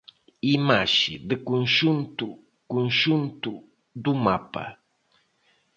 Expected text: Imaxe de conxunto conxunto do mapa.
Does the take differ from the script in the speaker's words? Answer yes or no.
no